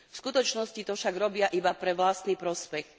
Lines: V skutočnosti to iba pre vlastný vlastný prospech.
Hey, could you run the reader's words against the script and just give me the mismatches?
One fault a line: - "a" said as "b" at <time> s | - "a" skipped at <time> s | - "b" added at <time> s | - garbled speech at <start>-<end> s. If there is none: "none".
- "však robia" added at 0.9 s
- "vlastný" skipped at 2.4 s